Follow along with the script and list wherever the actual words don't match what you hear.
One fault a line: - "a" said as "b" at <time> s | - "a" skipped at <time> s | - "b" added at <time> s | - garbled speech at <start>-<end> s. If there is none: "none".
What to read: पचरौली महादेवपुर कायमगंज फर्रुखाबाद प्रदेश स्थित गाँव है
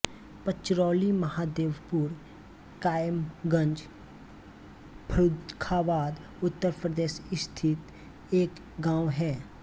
- "उत्तर" added at 6.4 s
- "एक" added at 8.3 s